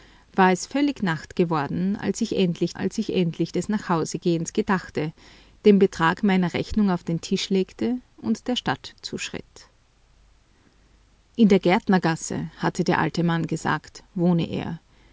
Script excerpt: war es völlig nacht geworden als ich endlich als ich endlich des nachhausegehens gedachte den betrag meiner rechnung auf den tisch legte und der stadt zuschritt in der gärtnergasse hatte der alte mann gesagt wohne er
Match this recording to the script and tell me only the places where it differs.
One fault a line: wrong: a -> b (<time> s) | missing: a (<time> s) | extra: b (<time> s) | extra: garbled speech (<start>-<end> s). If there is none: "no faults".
no faults